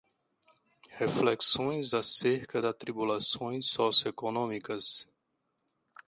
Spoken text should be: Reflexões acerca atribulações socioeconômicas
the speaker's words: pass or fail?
pass